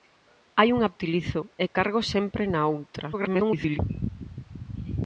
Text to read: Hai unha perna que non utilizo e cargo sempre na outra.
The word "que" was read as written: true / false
false